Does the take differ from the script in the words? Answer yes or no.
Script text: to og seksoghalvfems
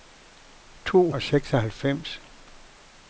no